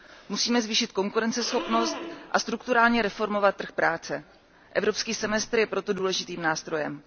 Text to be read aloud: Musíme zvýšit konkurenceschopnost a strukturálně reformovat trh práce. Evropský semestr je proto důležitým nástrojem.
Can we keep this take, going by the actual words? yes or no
yes